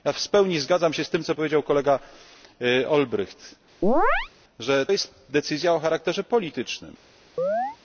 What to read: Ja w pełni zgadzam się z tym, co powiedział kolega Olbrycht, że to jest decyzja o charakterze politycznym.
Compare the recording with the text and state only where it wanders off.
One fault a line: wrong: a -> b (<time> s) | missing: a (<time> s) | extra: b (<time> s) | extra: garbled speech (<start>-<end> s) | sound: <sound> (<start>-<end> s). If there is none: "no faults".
sound: chirp (3.8-4.3 s)
missing: to (4.9 s)
sound: chirp (7.4-7.8 s)